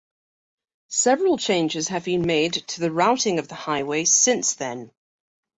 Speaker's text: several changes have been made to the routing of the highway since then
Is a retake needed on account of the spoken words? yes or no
no